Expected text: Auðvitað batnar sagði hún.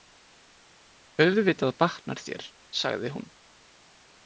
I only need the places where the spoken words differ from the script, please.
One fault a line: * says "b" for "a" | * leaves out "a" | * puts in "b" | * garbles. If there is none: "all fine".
* puts in "þér"